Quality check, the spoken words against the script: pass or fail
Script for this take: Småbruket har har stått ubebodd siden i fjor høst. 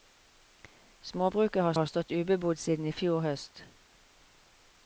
pass